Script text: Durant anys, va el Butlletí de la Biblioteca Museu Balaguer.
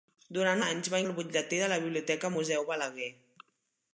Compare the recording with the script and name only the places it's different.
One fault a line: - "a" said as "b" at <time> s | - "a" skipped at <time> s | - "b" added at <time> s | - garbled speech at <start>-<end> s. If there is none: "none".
none